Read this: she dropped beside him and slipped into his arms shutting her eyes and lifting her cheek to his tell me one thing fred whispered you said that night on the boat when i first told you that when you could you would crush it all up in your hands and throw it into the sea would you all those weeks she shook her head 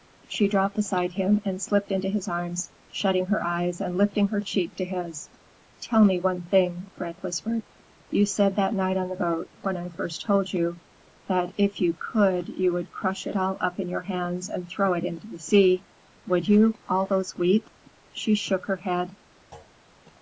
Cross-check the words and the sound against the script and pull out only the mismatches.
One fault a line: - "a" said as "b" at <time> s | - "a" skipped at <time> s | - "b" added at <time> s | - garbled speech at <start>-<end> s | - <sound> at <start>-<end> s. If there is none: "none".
- "when" said as "if" at 11.6 s
- thud at 19.5-19.8 s